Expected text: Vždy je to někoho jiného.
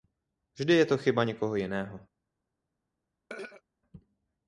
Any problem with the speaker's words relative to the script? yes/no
yes